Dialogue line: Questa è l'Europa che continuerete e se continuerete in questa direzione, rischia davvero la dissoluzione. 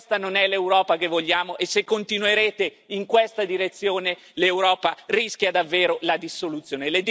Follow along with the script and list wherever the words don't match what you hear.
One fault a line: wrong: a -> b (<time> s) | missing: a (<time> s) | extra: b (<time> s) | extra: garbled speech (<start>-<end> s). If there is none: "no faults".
extra: non (0.2 s)
wrong: continuerete -> vogliamo (1.1 s)
extra: l'Europa (4.3 s)